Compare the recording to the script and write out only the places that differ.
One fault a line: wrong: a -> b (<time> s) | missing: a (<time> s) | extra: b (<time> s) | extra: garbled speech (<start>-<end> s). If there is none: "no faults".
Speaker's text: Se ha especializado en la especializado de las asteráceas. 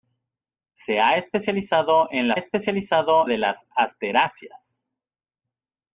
no faults